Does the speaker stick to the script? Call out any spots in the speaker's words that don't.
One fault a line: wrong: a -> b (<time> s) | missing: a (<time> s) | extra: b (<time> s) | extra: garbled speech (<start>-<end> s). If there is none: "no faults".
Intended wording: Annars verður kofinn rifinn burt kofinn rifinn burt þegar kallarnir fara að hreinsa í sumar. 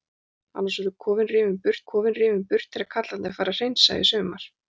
no faults